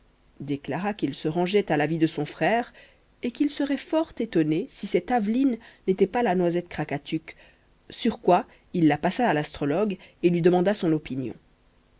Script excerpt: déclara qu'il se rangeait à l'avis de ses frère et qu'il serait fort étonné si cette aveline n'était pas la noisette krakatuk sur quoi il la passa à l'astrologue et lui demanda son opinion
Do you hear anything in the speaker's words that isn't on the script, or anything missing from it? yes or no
yes